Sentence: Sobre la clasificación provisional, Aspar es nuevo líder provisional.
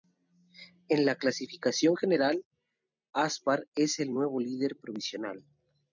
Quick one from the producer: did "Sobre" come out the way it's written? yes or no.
no